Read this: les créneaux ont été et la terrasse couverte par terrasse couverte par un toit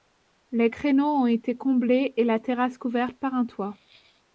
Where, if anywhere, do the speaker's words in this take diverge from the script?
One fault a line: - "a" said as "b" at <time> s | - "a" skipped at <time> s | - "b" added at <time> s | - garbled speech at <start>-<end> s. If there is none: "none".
- "comblés" added at 1.6 s
- "terrasse couverte par" skipped at 3.4 s